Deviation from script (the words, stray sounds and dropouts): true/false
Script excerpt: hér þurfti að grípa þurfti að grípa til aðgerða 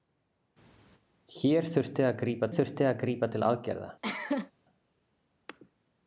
true